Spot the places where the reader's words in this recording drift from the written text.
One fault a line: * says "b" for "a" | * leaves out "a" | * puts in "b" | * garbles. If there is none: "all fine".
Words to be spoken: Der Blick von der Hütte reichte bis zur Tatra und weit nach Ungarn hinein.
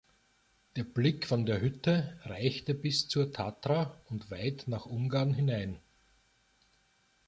all fine